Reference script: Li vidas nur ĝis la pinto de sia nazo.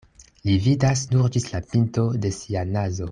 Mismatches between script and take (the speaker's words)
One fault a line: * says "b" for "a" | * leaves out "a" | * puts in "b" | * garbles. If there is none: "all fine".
all fine